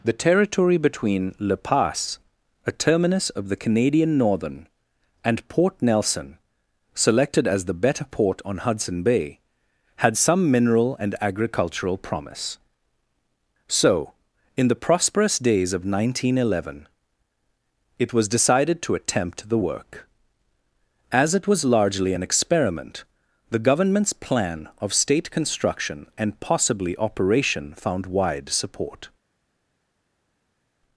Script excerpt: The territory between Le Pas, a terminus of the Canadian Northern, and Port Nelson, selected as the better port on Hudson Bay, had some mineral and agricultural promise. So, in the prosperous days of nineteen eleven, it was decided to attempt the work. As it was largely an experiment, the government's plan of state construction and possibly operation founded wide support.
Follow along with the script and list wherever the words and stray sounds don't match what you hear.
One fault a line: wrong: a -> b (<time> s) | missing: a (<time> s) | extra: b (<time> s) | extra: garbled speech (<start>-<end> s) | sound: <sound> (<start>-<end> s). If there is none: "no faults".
wrong: founded -> found (27.8 s)